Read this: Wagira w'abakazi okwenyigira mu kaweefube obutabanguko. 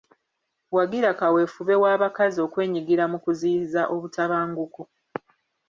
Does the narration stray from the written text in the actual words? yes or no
yes